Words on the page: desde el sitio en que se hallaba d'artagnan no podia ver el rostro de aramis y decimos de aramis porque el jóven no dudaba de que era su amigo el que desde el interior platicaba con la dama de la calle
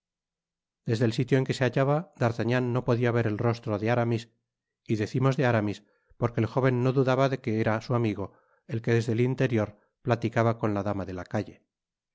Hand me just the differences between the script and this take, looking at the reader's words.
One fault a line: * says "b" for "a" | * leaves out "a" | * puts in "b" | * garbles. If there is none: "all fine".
all fine